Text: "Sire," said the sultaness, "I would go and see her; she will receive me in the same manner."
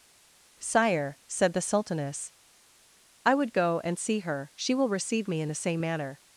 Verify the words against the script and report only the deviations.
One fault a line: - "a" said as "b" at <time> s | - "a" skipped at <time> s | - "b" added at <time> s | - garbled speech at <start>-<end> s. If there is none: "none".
none